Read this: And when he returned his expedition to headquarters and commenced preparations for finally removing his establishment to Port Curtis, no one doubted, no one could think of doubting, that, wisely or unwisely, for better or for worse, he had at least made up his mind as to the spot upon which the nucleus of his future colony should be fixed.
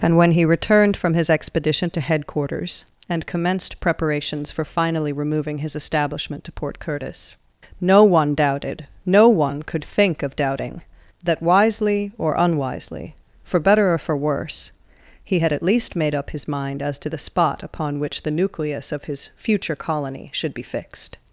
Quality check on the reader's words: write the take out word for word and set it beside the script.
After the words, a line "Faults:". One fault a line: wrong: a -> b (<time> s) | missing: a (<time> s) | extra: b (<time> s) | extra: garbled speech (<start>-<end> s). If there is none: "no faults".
And when he returned from his expedition to headquarters and commenced preparations for finally removing his establishment to Port Curtis, no one doubted, no one could think of doubting, that, wisely or unwisely, for better or for worse, he had at least made up his mind as to the spot upon which the nucleus of his future colony should be fixed.
Faults:
extra: from (1.0 s)